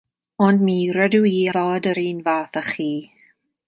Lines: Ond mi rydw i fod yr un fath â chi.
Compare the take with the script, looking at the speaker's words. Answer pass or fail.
pass